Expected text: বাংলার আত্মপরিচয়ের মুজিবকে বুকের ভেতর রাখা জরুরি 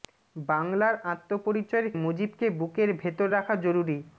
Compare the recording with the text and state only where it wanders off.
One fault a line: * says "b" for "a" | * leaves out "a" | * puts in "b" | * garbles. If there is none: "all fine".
all fine